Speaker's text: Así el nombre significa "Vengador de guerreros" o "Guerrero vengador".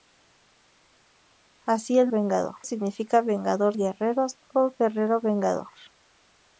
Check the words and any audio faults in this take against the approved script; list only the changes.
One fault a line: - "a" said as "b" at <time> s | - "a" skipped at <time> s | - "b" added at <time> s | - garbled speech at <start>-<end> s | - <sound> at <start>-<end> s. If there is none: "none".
- "nombre" said as "vengador" at 2.1 s
- "de" skipped at 3.8 s